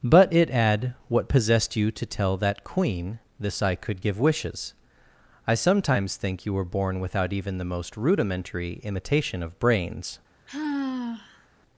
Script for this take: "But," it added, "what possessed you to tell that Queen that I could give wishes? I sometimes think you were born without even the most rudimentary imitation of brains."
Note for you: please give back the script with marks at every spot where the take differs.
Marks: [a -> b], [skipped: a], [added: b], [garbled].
"But," it [added, -> add] "what possessed you to tell that Queen [that -> this] I could give wishes? I sometimes think you were born without even the most rudimentary imitation of brains."